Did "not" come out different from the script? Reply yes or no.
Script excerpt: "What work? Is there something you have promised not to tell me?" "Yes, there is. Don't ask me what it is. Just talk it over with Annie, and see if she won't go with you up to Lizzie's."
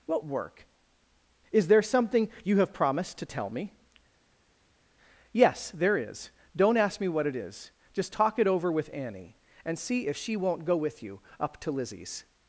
yes